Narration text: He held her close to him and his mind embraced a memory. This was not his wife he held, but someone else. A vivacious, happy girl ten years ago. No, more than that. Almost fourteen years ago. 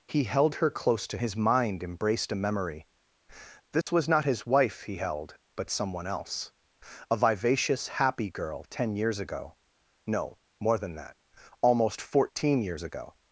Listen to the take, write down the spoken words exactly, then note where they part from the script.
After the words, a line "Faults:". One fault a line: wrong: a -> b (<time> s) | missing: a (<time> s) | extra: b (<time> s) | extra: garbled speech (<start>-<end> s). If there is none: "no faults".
He held her close to his mind embraced a memory. This was not his wife he held, but someone else. A vivacious, happy girl ten years ago. No, more than that. Almost fourteen years ago.
Faults:
missing: him and (1.2 s)